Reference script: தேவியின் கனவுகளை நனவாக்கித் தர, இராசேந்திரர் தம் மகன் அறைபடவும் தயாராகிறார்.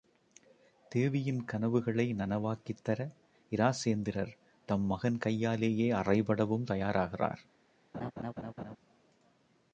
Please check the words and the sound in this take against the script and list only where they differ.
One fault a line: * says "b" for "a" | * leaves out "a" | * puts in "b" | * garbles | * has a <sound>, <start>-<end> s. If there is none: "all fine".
* puts in "கையாலேயே"
* has a laugh, 7.9-8.8 s